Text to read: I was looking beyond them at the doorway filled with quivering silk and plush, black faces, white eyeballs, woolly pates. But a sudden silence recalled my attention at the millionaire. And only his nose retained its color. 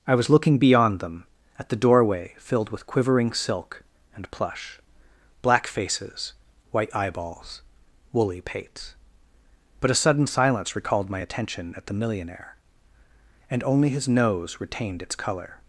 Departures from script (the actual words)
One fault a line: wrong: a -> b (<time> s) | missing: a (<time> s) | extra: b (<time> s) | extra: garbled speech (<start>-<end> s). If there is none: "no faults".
no faults